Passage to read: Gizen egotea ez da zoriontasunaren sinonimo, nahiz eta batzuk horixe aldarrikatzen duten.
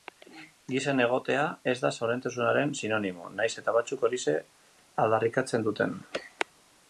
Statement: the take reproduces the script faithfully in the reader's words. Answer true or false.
true